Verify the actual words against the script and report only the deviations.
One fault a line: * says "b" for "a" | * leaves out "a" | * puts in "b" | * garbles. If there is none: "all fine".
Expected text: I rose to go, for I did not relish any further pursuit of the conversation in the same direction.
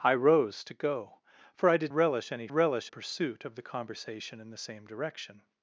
* leaves out "not"
* says "relish" for "further"